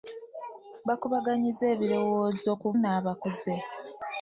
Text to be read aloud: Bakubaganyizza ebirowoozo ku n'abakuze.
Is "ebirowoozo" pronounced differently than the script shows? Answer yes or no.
no